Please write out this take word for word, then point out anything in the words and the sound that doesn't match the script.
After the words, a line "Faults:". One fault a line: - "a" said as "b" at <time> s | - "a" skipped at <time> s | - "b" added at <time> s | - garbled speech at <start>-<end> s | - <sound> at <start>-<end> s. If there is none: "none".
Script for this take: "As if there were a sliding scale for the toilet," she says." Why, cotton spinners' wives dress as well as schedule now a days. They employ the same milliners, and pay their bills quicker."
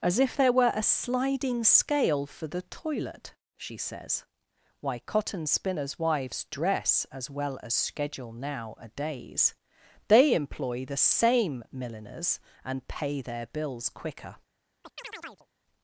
"As if there were a sliding scale for the toilet," she says." Why, cotton spinners' wives dress as well as schedule now a days. They employ the same milliners, and pay their bills quicker."
Faults:
- chirp at 14.8-15.5 s